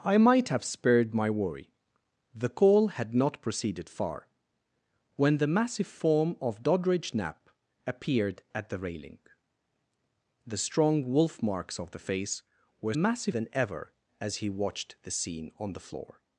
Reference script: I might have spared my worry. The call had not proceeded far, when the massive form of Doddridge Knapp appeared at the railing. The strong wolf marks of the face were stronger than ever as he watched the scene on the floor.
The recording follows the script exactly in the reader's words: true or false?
false